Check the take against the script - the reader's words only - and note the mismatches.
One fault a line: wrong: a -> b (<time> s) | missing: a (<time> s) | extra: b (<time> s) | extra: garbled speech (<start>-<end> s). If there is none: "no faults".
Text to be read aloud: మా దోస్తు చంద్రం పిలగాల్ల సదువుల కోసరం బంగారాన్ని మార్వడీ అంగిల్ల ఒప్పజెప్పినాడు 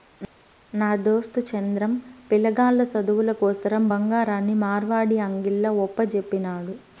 wrong: మా -> నా (0.7 s)